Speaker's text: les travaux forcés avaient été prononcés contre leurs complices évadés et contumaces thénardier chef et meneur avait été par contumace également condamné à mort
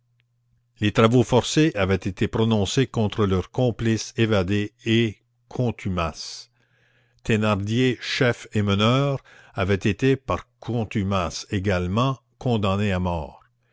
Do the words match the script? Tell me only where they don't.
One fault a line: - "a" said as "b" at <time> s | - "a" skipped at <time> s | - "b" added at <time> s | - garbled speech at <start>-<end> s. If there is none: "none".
none